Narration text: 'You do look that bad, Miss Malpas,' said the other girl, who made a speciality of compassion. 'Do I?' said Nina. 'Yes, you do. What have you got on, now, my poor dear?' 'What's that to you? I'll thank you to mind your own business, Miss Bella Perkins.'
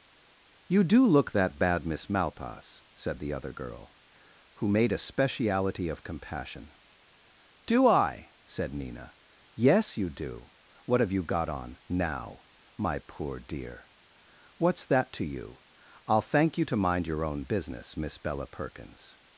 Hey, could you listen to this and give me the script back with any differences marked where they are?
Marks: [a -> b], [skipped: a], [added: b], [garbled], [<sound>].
'You do look that bad, Miss Malpas,' said the other girl, who made a speciality of compassion. 'Do I?' said Nina. 'Yes, you do. What have you got on, now, my poor dear?' 'What's that to you? I'll thank you to mind your own business, Miss Bella Perkins.'